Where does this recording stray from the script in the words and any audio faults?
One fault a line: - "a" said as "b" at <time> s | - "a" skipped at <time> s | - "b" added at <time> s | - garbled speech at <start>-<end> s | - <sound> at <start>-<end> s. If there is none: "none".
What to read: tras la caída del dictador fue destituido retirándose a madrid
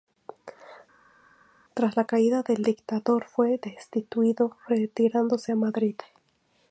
none